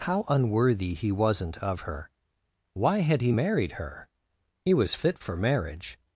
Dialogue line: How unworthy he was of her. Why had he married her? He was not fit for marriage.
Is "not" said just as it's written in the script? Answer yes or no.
no